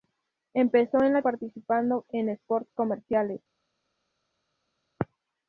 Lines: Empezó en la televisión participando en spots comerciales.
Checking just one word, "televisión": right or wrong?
wrong